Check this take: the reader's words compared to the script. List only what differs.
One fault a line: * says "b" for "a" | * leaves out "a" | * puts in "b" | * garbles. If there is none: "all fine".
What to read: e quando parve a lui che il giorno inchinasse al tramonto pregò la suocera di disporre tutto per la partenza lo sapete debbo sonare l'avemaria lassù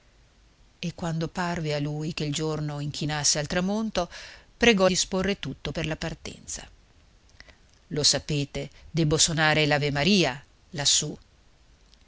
* leaves out "la suocera di"